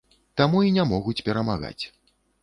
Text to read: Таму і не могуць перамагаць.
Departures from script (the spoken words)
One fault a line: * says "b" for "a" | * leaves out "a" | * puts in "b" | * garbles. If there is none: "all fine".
all fine